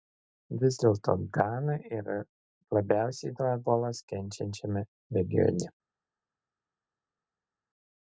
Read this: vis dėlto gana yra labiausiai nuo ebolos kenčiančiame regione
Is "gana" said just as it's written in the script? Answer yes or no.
yes